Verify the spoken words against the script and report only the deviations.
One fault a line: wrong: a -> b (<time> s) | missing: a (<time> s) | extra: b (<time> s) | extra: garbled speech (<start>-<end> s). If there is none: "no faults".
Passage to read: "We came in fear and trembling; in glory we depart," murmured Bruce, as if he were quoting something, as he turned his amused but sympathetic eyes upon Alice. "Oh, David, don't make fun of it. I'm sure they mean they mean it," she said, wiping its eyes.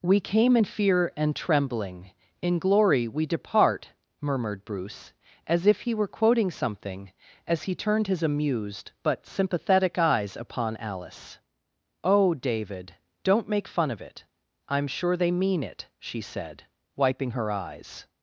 missing: they mean (15.6 s)
wrong: its -> her (17.3 s)